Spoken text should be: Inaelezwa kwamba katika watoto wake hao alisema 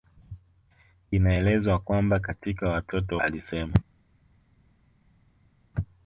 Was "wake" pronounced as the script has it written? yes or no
no